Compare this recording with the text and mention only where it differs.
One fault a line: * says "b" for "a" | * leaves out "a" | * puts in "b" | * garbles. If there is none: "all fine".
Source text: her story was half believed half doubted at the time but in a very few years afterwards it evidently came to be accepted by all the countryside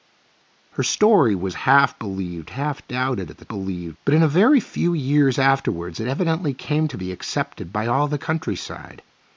* says "believed" for "time"